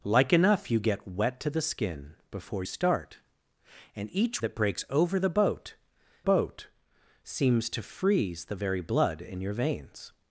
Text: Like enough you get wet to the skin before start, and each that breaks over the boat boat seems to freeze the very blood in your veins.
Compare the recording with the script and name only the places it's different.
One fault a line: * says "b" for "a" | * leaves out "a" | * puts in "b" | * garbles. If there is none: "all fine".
all fine